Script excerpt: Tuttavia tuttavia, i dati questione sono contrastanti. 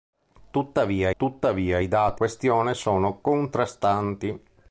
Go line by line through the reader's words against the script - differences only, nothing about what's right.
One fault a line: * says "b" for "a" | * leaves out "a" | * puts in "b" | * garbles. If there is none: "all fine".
all fine